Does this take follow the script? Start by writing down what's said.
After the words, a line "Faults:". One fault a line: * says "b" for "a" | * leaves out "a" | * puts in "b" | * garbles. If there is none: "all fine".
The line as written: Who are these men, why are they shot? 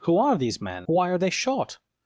Who are these men, why are they shot?
Faults:
all fine